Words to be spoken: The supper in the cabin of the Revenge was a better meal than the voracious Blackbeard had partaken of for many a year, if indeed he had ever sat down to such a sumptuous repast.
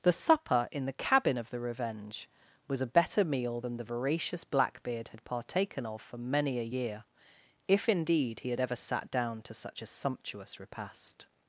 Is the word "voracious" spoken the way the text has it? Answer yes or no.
yes